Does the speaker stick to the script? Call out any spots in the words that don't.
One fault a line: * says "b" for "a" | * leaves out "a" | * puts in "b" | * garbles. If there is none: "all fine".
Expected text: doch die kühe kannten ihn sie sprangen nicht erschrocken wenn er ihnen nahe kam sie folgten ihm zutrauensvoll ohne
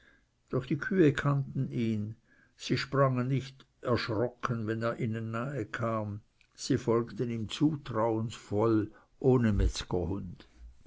all fine